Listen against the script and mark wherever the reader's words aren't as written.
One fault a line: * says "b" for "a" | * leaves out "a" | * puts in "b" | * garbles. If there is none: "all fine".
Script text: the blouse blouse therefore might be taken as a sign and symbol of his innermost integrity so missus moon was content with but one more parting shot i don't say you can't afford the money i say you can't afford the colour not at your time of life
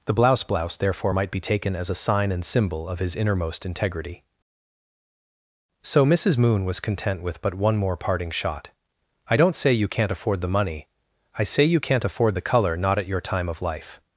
all fine